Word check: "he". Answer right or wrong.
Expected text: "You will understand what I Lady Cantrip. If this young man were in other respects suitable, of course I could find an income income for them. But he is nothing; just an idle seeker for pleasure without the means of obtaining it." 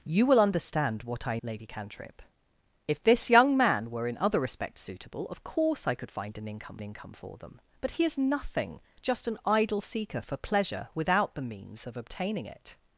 right